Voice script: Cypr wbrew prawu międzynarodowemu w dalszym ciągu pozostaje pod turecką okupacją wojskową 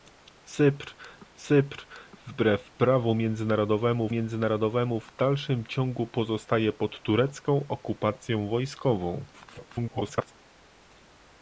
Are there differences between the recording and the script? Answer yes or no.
yes